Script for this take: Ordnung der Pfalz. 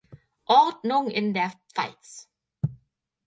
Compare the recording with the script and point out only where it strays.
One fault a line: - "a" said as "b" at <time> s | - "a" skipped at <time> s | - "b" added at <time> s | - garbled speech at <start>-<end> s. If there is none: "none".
- "in" added at 1.1 s